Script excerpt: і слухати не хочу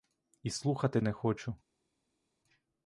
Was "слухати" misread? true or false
false